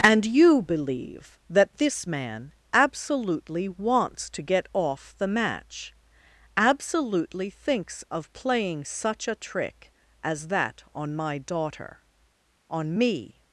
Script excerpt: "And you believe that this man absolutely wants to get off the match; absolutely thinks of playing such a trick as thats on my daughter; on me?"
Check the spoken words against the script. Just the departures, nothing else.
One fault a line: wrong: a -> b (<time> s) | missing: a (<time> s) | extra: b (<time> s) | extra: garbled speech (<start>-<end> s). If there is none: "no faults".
wrong: thats -> that (10.5 s)